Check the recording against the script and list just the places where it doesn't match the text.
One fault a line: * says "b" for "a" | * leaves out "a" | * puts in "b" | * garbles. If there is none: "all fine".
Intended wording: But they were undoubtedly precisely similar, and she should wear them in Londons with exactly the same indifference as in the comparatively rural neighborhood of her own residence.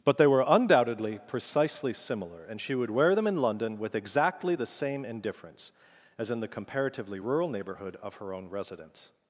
* says "would" for "should"
* says "London" for "Londons"